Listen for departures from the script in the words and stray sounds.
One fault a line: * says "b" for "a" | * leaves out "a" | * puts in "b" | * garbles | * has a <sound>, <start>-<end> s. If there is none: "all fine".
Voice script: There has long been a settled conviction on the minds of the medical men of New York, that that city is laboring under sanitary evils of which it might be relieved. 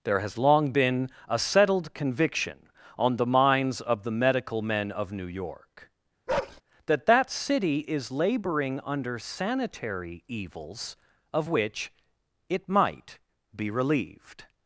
* has a bark, 6.3-6.6 s